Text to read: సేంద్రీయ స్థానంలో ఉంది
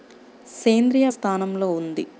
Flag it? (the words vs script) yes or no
no